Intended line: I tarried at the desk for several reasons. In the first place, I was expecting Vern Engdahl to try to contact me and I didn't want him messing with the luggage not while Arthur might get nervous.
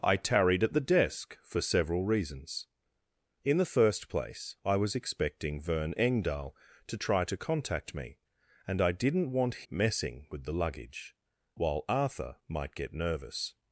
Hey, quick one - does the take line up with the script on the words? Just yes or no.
no